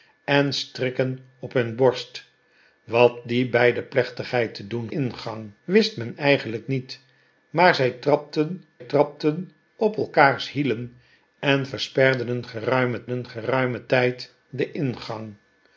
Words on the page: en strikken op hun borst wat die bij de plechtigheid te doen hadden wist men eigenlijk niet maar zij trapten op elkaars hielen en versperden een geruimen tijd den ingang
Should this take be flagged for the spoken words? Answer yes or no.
yes